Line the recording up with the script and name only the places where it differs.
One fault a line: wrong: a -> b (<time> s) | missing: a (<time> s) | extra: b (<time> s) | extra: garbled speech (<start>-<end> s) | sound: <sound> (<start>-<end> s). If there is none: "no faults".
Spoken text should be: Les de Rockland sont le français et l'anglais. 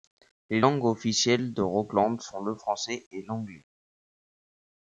extra: langues officielles (0.6 s)